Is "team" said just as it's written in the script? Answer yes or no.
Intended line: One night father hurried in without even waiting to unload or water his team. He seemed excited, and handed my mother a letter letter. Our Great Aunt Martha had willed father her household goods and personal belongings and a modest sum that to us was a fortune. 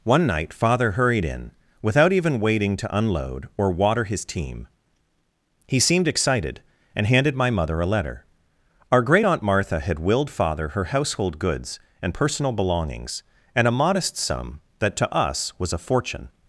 yes